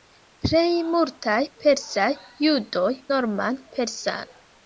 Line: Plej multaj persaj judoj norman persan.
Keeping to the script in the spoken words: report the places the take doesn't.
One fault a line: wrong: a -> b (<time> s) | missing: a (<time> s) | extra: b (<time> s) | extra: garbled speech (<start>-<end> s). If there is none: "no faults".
no faults